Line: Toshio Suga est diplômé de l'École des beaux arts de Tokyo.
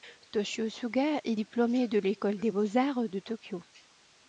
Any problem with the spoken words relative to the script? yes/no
no